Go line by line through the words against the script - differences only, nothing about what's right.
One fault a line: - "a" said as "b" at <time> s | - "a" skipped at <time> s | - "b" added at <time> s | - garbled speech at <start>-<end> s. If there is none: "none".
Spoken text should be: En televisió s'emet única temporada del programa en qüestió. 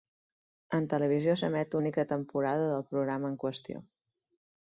none